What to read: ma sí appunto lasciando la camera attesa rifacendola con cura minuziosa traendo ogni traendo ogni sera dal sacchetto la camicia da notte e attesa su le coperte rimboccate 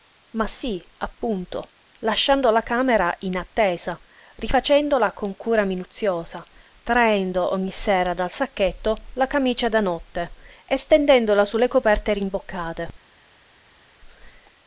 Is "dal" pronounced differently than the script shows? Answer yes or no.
no